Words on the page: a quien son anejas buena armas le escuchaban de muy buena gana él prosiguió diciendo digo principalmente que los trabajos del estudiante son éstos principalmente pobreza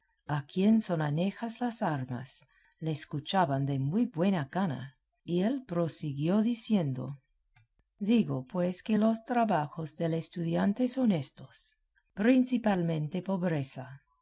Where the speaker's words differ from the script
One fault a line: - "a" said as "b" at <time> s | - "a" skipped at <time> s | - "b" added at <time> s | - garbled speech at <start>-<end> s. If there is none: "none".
- "buena" said as "las" at 1.6 s
- "y" added at 5.2 s
- "principalmente" said as "pues" at 8.4 s